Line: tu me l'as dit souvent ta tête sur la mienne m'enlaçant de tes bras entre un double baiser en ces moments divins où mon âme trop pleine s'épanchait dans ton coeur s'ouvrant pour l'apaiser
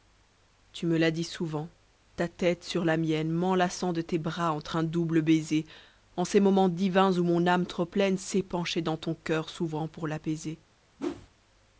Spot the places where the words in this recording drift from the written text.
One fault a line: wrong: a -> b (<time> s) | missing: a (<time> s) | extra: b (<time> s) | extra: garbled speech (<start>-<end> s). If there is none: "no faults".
no faults